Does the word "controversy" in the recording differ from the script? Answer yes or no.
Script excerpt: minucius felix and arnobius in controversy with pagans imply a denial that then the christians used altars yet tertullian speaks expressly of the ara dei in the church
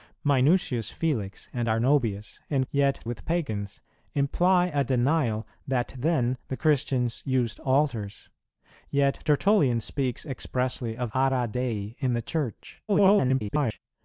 yes